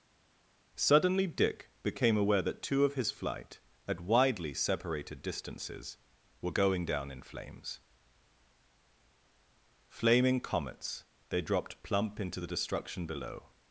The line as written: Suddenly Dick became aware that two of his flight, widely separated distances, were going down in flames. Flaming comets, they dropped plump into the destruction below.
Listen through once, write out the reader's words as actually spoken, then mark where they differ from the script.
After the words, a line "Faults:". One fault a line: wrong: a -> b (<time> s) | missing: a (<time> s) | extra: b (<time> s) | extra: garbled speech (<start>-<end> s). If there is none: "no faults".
Suddenly Dick became aware that two of his flight, at widely separated distances, were going down in flames. Flaming comets, they dropped plump into the destruction below.
Faults:
extra: at (3.9 s)